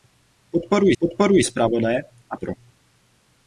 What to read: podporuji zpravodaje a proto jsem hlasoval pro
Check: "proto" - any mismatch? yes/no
yes